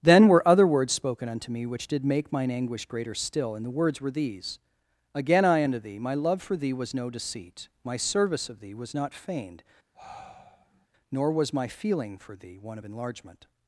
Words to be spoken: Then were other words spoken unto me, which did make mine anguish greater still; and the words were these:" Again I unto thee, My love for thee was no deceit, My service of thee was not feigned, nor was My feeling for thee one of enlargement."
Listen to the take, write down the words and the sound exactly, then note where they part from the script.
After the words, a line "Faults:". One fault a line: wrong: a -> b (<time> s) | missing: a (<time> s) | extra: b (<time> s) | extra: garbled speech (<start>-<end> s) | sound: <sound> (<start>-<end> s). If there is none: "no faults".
Then were other words spoken unto me, which did make mine anguish greater still; and the words were these:" Again I unto thee, My love for thee was no deceit, My service of thee was not feigned, nor was My feeling for thee one of enlargement."
Faults:
sound: sigh (9.9-10.9 s)